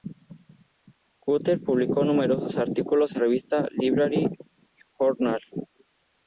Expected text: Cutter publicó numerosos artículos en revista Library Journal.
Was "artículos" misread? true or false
false